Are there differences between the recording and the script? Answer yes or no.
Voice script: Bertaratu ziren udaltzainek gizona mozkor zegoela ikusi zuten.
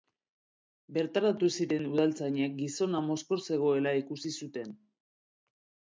no